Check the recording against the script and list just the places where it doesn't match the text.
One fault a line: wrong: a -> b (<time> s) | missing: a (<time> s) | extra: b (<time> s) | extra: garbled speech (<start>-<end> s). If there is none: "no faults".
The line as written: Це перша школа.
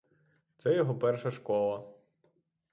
extra: його (0.8 s)